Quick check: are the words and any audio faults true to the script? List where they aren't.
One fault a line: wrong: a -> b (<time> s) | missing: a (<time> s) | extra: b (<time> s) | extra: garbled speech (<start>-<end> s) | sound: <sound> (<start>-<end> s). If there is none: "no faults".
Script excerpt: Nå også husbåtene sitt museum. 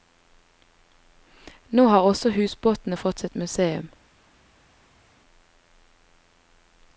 extra: har (1.9 s)
extra: fått (3.0 s)